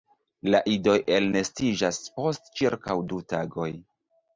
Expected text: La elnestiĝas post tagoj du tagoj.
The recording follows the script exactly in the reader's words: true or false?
false